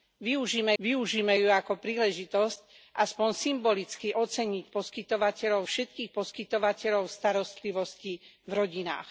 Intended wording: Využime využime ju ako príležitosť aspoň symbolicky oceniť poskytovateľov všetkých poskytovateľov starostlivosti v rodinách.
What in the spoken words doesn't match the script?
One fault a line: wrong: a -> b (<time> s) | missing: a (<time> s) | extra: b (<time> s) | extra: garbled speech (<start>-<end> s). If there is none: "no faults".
no faults